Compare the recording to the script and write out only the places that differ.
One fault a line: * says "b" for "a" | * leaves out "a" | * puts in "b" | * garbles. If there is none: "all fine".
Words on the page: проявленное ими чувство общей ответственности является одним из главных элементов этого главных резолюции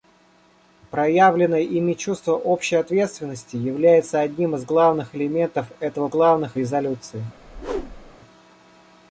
all fine